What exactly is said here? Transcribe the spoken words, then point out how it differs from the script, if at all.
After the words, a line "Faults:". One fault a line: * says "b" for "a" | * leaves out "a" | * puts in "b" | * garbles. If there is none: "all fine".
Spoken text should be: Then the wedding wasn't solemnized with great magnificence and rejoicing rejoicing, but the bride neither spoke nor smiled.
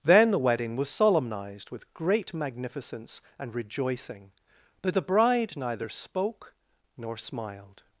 Then the wedding was solemnized with great magnificence and rejoicing, but the bride neither spoke nor smiled.
Faults:
* says "was" for "wasn't"
* leaves out "rejoicing"